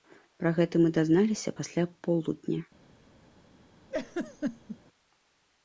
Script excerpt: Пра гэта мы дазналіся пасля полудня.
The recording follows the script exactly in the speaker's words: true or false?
true